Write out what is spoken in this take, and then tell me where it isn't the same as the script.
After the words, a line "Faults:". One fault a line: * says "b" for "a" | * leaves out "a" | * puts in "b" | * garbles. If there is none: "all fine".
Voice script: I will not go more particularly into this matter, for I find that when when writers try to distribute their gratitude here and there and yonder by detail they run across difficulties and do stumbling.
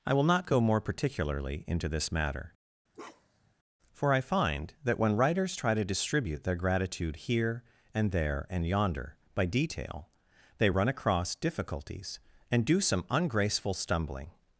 I will not go more particularly into this matter, for I find that when writers try to distribute their gratitude here and there and yonder by detail they run across difficulties and do some ungraceful stumbling.
Faults:
* leaves out "when"
* puts in "some ungraceful"